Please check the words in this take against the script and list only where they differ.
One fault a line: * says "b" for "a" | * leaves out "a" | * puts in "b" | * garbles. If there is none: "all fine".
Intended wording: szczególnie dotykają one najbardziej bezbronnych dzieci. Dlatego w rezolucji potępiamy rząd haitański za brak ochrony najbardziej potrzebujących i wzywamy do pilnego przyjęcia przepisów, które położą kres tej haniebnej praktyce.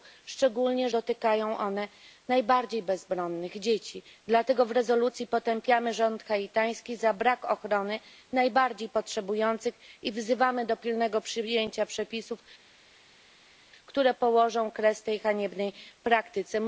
all fine